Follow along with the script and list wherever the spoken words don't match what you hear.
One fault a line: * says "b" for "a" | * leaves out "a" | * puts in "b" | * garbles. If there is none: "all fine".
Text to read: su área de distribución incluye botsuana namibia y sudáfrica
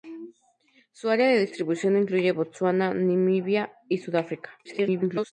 * garbles